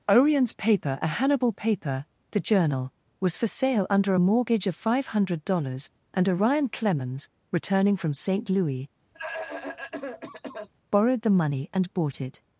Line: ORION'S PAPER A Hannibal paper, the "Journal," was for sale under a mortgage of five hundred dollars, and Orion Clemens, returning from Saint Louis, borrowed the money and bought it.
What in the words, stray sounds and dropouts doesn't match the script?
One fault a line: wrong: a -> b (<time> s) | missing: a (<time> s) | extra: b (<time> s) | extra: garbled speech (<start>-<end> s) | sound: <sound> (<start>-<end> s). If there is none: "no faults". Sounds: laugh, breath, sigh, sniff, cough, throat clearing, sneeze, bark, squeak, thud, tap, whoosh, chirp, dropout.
sound: cough (9.1-10.7 s)